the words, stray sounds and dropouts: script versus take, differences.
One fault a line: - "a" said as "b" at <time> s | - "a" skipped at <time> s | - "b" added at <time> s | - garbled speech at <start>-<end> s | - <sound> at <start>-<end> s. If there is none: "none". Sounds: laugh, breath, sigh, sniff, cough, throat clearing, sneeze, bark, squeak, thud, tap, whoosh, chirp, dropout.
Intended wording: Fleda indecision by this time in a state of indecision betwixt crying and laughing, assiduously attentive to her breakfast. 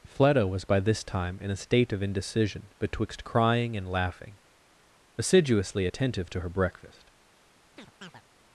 - "indecision" said as "was" at 0.5 s
- chirp at 7.8-8.2 s